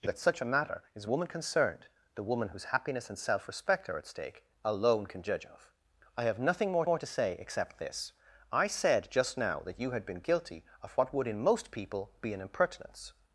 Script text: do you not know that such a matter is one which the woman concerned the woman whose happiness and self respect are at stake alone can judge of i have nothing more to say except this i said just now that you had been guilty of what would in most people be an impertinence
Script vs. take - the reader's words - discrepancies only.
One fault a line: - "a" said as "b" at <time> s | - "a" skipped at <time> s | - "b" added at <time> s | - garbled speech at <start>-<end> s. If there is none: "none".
- "you not know" skipped at 0.1 s
- "one which the" skipped at 1.1 s
- "more" added at 6.8 s